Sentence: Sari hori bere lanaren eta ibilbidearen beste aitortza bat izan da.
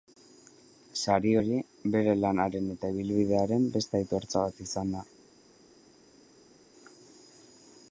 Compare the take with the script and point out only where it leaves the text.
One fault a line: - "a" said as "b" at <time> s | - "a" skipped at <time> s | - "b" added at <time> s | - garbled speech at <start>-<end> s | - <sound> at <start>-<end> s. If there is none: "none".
none